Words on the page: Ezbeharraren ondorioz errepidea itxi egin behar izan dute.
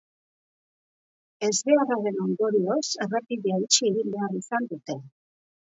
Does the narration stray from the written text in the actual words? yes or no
no